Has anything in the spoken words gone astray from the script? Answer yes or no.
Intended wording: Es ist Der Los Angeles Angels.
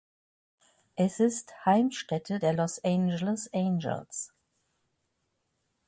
yes